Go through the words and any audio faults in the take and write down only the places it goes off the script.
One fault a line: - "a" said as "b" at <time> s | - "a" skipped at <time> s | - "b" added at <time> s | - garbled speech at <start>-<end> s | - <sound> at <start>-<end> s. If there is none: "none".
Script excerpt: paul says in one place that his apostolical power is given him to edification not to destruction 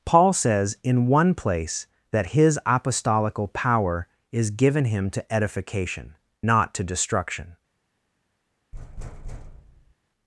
- thud at 8.7-10.0 s